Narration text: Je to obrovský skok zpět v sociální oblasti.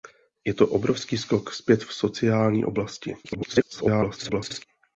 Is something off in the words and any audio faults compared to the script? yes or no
yes